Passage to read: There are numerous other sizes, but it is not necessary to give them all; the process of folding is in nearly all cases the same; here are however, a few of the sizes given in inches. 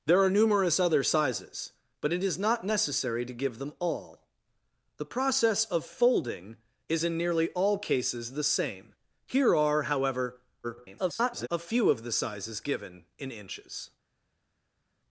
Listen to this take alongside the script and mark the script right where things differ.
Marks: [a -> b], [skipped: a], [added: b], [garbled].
There are numerous other sizes, but it is not necessary to give them all; the process of folding is in nearly all cases the same; here are however, [garbled] a few of the sizes given in inches.